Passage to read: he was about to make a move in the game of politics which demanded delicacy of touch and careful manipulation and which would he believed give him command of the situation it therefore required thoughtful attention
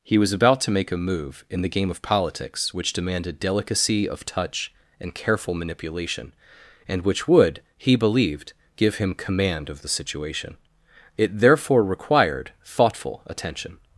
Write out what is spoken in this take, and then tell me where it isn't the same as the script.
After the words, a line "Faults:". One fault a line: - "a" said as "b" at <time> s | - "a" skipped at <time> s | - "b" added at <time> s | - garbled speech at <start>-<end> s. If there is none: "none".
he was about to make a move in the game of politics which demanded delicacy of touch and careful manipulation and which would he believed give him command of the situation it therefore required thoughtful attention
Faults:
none